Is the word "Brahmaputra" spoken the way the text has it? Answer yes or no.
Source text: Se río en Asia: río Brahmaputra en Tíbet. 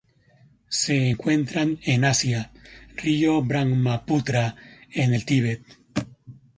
yes